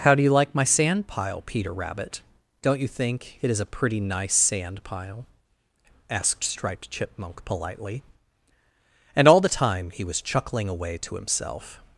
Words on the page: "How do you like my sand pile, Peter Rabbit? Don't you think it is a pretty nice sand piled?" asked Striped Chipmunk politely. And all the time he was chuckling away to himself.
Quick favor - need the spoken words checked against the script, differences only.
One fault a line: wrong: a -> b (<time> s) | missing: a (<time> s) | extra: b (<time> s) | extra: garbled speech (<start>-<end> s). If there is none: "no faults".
wrong: piled -> pile (4.8 s)